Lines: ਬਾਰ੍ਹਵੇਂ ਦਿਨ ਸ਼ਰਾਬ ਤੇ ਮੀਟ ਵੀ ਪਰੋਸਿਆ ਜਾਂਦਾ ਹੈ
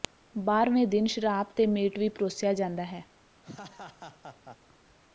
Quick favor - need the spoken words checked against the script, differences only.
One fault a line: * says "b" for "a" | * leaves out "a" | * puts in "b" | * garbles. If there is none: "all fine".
all fine